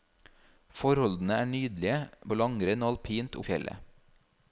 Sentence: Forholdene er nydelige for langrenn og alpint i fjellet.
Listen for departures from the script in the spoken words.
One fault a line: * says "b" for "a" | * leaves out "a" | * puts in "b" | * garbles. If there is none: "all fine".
all fine